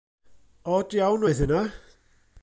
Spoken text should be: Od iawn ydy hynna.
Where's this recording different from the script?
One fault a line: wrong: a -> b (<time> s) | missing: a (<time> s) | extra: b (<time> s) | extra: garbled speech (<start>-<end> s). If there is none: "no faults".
wrong: ydy -> oedd (1.3 s)